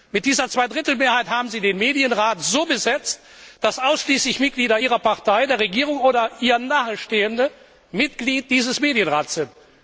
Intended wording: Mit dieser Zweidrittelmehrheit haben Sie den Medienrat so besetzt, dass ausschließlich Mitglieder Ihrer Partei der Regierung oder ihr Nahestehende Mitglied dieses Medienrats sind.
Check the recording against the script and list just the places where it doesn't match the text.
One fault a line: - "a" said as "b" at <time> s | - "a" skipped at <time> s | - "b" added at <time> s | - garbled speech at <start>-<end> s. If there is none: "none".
none